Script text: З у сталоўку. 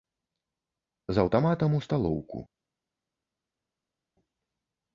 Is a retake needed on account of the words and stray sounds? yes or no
yes